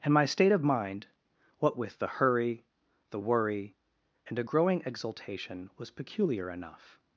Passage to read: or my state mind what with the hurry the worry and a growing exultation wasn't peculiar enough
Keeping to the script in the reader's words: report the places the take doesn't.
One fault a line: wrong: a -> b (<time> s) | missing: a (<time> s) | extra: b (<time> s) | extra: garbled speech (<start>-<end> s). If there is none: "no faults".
wrong: or -> and (0.0 s)
extra: of (0.5 s)
wrong: wasn't -> was (5.8 s)